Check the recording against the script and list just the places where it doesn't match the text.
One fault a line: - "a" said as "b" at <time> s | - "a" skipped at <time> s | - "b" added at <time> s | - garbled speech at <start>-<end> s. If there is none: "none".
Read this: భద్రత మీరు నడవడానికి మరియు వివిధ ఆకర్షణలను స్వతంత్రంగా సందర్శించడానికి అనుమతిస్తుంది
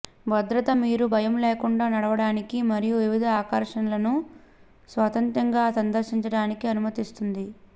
- "భయం లేకుండా" added at 1.1 s